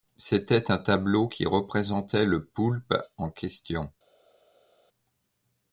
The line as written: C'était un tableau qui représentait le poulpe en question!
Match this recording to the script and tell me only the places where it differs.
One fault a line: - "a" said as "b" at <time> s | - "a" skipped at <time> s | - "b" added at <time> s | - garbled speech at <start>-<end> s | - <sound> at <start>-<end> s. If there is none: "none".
none